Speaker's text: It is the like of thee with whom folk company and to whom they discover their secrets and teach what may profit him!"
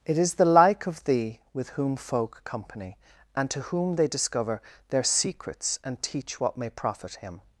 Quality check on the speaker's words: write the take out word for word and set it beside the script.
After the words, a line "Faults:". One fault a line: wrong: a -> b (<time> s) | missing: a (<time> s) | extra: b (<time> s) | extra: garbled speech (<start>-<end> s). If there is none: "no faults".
It is the like of thee with whom folk company and to whom they discover their secrets and teach what may profit him!"
Faults:
no faults